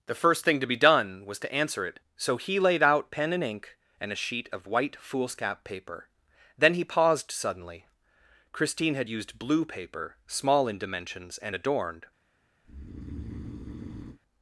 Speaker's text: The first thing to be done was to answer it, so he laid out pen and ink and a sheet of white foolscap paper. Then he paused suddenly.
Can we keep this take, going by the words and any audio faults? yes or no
no